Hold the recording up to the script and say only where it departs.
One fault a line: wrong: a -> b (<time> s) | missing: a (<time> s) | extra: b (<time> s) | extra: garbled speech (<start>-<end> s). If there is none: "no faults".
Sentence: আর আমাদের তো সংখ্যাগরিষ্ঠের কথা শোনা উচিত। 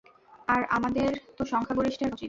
missing: কথা শোনা (2.1 s)